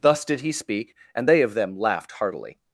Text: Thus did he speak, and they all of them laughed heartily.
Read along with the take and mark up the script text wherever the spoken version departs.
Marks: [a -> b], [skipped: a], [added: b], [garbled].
Thus did he speak, and they [skipped: all] of them laughed heartily.